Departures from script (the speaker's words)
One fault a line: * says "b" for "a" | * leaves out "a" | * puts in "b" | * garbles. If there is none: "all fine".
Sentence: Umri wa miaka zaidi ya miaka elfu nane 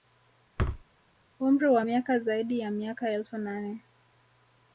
all fine